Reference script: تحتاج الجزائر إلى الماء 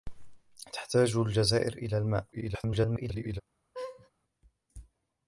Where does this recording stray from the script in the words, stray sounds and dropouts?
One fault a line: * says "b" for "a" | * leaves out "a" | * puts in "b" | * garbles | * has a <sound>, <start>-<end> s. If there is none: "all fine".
* garbles
* has a laugh, 3.7-4.1 s